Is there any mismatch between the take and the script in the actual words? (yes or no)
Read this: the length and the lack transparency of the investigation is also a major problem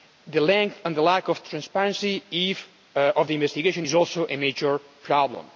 yes